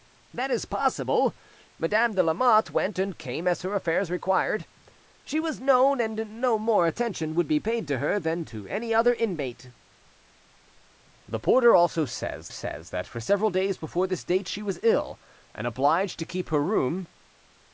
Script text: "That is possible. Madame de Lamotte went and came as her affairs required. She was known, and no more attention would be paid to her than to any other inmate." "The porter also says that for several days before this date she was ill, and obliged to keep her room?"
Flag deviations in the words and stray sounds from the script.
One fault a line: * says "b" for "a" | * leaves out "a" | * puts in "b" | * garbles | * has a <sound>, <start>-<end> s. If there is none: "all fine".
* puts in "says"